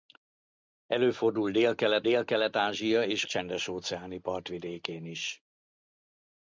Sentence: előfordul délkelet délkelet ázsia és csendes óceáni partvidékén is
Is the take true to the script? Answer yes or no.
yes